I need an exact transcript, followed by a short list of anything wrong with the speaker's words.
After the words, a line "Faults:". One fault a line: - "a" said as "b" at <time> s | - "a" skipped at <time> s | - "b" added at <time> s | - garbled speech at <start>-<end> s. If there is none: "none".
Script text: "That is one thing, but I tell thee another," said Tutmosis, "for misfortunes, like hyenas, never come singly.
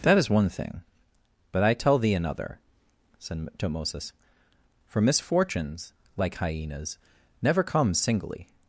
"That is one thing, but I tell thee another," said Tutmosis, "for misfortunes, like hyenas, never come singly.
Faults:
none